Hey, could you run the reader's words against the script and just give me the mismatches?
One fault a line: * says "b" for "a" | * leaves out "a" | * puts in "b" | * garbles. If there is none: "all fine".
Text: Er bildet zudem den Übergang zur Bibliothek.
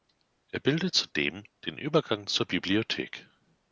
all fine